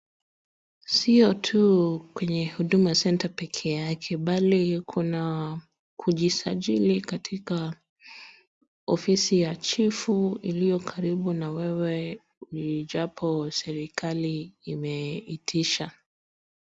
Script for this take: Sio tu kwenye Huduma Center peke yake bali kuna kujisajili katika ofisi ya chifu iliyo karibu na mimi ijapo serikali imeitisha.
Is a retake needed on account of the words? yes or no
yes